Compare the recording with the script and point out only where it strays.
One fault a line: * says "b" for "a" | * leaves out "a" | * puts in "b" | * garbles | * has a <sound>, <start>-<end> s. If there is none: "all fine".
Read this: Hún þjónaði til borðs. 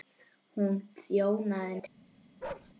* has a bark, 2.4-2.7 s